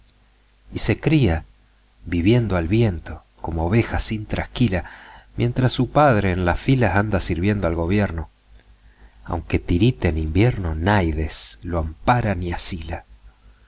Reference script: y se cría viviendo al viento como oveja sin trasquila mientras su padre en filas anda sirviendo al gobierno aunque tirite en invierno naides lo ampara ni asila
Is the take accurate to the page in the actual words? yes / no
no